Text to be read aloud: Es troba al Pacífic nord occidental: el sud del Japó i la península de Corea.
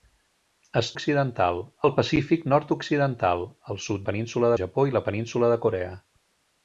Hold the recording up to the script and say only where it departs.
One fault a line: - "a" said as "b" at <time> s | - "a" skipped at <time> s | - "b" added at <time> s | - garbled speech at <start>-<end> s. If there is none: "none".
- "troba" said as "occidental" at 0.9 s
- "del" said as "península" at 4.1 s